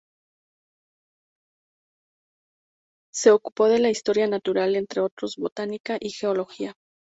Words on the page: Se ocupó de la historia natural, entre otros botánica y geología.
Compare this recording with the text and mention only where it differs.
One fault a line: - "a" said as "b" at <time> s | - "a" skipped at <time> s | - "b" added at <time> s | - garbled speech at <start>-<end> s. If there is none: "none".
none